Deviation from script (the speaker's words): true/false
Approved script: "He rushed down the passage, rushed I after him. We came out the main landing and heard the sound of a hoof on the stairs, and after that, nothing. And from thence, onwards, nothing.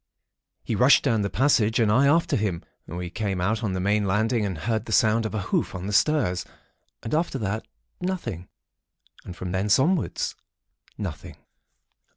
true